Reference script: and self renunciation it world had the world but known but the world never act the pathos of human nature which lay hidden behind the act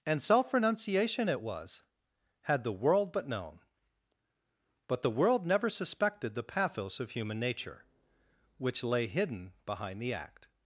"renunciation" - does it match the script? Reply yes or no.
yes